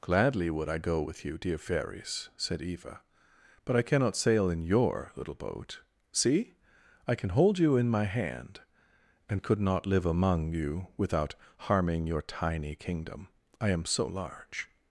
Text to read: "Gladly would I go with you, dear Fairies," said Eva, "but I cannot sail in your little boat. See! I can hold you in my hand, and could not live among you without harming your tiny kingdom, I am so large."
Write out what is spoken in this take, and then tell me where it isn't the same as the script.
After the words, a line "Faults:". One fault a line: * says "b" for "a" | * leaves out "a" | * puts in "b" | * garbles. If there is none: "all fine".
"Gladly would I go with you, dear Fairies," said Eva, "but I cannot sail in your little boat. See! I can hold you in my hand, and could not live among you without harming your tiny kingdom, I am so large."
Faults:
all fine